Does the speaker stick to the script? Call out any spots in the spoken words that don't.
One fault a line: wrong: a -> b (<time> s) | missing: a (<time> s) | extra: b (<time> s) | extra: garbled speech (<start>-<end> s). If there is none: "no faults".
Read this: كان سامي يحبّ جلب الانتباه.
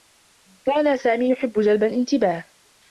no faults